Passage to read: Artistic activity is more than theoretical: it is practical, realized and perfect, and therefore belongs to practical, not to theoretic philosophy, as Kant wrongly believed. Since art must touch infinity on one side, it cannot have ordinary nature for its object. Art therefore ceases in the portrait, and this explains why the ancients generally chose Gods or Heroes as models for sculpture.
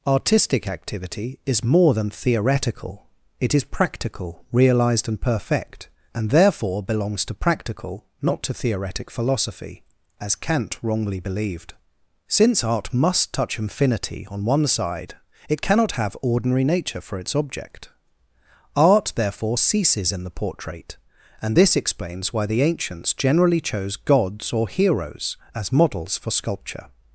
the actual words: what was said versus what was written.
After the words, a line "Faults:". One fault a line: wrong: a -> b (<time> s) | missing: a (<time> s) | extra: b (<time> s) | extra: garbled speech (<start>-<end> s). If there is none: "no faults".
Artistic activity is more than theoretical: it is practical, realized and perfect, and therefore belongs to practical, not to theoretic philosophy, as Kant wrongly believed. Since art must touch infinity on one side, it cannot have ordinary nature for its object. Art therefore ceases in the portrait, and this explains why the ancients generally chose Gods or Heroes as models for sculpture.
Faults:
no faults